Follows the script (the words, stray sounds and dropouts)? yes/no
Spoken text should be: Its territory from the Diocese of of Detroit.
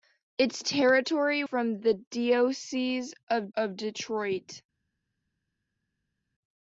yes